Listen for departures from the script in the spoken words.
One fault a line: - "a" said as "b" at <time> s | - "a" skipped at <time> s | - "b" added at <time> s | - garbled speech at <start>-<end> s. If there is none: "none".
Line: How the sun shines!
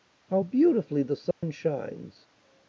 - "beautifully" added at 0.4 s